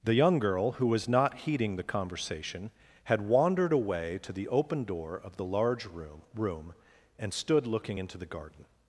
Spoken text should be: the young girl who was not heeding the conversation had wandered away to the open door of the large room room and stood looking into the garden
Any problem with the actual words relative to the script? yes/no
no